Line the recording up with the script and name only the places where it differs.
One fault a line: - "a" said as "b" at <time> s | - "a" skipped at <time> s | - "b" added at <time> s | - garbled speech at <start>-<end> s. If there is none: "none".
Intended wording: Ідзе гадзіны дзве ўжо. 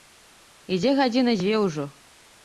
none